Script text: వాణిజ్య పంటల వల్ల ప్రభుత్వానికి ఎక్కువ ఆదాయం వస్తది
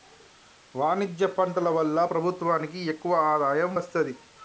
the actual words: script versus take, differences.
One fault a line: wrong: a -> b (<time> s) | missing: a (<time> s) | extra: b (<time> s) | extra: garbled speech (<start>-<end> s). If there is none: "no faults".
no faults